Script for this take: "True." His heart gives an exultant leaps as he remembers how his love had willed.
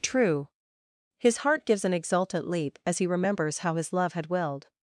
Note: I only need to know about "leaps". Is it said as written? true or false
false